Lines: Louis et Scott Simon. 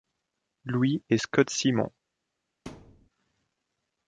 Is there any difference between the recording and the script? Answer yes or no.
no